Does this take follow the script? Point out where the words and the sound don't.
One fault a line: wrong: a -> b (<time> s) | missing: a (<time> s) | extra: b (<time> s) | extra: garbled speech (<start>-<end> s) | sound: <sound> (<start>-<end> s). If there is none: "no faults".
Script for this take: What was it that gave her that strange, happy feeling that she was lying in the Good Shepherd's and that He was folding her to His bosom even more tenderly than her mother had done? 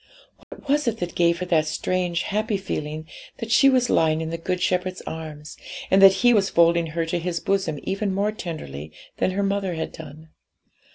sound: dropout (0.4-0.5 s)
extra: arms (5.0 s)